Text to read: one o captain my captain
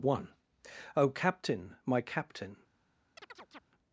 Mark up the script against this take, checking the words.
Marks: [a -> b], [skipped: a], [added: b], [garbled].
one o captain my captain